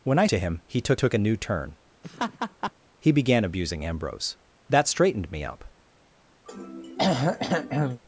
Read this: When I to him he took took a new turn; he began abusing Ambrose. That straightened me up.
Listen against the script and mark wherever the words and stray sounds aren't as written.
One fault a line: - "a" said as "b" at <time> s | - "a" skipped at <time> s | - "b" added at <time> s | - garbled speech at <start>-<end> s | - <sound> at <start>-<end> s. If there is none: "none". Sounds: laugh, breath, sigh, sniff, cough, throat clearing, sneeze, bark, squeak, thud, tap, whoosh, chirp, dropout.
- laugh at 2.0-2.7 s
- throat clearing at 6.5-8.0 s